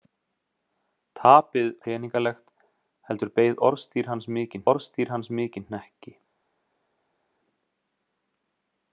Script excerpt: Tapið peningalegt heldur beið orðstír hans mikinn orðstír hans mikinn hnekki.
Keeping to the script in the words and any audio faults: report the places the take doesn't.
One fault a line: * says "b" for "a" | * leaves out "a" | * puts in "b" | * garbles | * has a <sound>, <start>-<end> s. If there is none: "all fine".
all fine